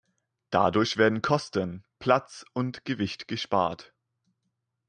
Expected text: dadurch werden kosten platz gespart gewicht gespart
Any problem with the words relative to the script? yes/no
yes